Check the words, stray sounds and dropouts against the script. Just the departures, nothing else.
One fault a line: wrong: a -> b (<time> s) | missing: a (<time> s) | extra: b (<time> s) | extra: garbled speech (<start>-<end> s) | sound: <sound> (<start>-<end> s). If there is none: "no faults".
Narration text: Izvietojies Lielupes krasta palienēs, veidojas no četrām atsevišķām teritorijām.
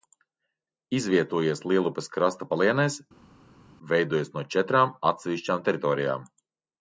no faults